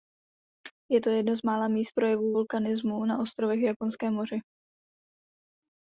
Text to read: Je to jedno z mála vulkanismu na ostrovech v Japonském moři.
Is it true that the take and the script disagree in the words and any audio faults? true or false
true